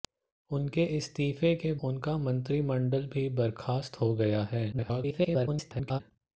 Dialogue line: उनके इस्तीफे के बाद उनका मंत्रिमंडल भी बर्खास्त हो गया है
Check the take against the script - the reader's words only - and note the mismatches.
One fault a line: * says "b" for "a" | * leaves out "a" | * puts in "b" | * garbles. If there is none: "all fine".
* leaves out "बाद"
* garbles